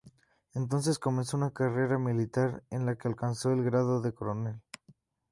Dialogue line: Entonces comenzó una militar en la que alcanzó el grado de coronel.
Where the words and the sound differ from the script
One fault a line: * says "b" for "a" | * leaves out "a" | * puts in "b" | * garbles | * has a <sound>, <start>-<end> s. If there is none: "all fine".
* puts in "carrera"